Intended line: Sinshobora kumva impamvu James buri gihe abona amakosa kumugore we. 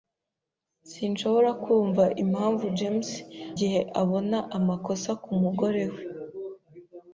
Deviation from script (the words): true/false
true